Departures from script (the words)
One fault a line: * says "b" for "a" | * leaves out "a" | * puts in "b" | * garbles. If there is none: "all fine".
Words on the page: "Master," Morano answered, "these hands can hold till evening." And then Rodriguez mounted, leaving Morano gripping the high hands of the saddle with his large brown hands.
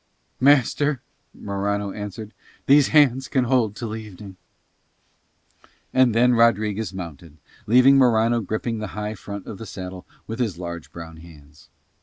* says "front" for "hands"